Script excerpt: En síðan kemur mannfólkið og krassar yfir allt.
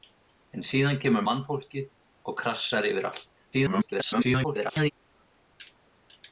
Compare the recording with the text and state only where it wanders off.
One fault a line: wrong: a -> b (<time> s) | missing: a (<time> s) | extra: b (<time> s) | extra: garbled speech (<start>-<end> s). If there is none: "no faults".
extra: garbled speech (3.5-4.9 s)